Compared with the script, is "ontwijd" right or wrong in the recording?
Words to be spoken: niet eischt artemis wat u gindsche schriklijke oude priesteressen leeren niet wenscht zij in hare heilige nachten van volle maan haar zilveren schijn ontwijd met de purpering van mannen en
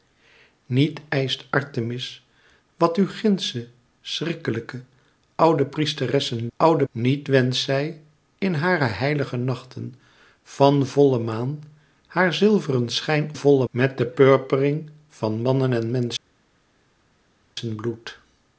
wrong